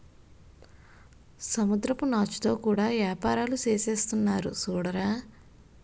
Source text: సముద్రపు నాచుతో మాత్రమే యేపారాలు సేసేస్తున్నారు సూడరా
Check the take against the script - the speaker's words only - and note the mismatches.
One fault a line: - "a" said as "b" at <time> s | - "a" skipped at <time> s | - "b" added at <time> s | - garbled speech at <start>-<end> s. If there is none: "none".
- "మాత్రమే" said as "కూడా" at 2.6 s